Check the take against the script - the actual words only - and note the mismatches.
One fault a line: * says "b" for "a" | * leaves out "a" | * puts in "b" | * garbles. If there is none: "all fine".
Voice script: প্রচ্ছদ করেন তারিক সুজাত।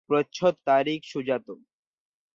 * leaves out "করেন"